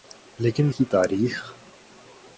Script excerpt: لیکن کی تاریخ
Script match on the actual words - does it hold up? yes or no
yes